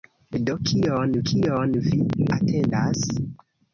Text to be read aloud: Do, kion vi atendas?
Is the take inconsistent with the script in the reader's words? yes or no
yes